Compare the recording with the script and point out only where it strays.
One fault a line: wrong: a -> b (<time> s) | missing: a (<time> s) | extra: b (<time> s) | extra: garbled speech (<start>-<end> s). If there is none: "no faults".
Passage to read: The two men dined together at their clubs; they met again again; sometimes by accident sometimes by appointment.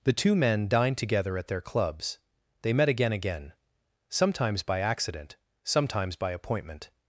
no faults